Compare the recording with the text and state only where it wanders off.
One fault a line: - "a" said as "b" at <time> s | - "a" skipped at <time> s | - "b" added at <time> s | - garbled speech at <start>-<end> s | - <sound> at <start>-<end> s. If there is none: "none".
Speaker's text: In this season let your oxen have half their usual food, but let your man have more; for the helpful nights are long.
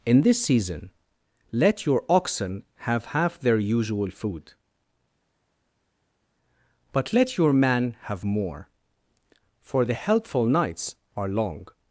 none